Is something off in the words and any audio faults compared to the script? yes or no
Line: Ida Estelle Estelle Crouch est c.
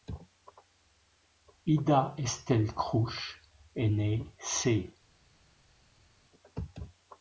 yes